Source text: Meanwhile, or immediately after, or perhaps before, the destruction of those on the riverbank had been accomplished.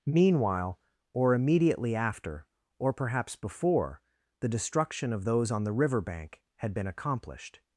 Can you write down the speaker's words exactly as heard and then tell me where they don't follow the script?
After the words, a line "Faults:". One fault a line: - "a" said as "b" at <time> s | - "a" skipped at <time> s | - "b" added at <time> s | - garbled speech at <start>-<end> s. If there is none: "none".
Meanwhile, or immediately after, or perhaps before, the destruction of those on the riverbank had been accomplished.
Faults:
none